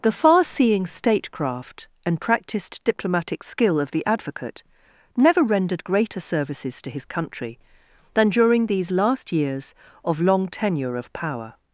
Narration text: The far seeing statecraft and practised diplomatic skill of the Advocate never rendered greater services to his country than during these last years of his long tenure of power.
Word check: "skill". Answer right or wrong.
right